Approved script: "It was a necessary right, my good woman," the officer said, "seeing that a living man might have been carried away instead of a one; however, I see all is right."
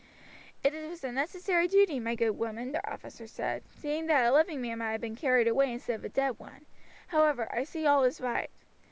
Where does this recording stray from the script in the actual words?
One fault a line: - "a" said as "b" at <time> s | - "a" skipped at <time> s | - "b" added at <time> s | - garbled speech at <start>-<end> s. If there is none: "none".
- "right" said as "duty" at 1.7 s
- "dead" added at 6.1 s